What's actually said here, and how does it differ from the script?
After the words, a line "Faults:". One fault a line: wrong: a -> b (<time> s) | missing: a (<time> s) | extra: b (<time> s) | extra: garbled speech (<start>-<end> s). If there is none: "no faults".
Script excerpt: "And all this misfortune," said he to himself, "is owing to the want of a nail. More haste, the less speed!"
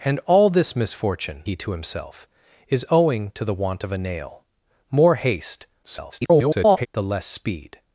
"And all this misfortune," he to himself, "is owing to the want of a nail. More haste, [garbled] the less speed!"
Faults:
missing: said (1.4 s)
extra: garbled speech (5.8-6.9 s)